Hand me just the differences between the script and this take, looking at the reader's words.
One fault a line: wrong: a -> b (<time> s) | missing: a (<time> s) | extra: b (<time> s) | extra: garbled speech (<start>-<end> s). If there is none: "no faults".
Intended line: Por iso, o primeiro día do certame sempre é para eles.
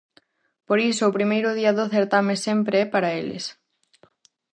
no faults